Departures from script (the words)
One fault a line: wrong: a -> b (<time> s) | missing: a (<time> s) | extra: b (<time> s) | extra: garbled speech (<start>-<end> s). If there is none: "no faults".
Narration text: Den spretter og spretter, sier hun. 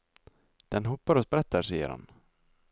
wrong: spretter -> hopper (0.9 s)
wrong: hun -> han (1.9 s)